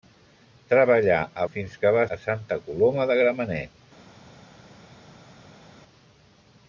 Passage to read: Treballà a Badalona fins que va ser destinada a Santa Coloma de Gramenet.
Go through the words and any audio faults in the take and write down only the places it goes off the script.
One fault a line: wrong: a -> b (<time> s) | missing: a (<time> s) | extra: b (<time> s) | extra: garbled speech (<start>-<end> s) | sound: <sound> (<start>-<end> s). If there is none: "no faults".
missing: Badalona (1.4 s)
missing: ser destinada (2.1 s)